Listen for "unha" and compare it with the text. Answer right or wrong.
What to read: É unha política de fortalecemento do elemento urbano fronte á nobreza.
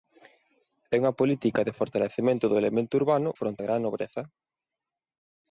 right